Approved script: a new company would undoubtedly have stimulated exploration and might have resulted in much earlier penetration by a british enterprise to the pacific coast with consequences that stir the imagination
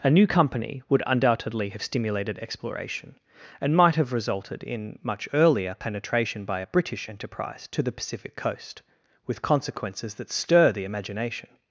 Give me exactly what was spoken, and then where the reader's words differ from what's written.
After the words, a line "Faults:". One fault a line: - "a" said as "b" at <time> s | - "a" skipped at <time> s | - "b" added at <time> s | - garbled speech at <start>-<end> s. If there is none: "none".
a new company would undoubtedly have stimulated exploration and might have resulted in much earlier penetration by a british enterprise to the pacific coast with consequences that stir the imagination
Faults:
none